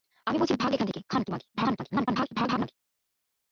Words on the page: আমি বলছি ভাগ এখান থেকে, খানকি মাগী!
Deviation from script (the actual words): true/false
true